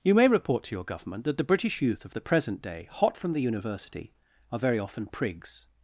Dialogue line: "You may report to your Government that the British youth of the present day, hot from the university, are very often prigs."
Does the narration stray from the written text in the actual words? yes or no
no